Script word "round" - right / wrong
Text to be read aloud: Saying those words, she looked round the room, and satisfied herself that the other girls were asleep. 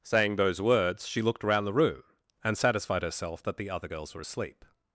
wrong